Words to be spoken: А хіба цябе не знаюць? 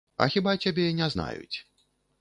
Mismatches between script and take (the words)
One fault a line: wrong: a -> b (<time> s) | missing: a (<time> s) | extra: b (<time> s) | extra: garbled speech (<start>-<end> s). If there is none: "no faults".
no faults